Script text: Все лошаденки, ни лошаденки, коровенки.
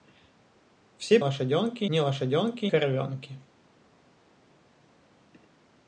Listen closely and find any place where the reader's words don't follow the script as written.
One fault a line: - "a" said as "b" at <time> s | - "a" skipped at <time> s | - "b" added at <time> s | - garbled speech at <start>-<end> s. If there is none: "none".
none